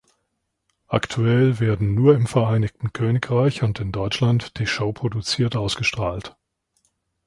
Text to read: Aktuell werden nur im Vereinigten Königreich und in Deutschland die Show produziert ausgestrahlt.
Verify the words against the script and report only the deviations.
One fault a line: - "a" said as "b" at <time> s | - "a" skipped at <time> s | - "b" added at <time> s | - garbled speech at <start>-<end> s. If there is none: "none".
none